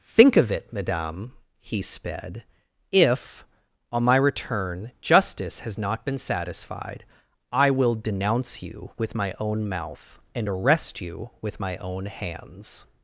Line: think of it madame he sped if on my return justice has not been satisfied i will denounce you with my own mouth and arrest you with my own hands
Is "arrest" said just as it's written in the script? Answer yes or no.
yes